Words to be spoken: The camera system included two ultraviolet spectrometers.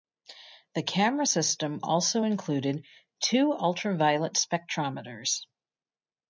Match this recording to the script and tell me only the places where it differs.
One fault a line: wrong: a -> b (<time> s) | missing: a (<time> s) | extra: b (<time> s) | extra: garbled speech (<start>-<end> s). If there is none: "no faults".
extra: also (1.8 s)